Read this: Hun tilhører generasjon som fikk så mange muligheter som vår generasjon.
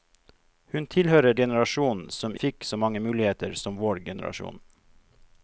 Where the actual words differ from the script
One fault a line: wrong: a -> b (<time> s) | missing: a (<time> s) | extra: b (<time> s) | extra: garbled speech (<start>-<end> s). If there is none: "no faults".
no faults